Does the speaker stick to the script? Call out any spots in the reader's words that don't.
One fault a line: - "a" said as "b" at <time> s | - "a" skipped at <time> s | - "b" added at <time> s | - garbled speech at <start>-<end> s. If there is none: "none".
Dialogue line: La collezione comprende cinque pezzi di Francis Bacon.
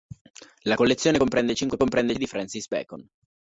- "pezzi" said as "comprende" at 1.8 s